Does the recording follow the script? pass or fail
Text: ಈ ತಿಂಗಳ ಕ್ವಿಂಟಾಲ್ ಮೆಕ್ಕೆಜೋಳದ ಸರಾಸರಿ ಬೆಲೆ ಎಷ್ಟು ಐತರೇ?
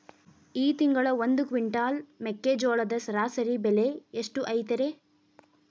fail